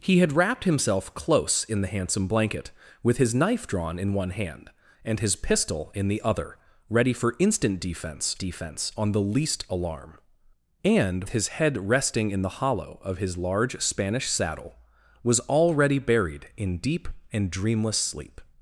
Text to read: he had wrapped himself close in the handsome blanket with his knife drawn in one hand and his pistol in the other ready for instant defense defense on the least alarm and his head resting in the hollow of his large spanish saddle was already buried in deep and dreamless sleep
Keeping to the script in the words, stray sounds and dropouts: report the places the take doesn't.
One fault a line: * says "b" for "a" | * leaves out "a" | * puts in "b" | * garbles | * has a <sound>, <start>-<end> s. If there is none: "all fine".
all fine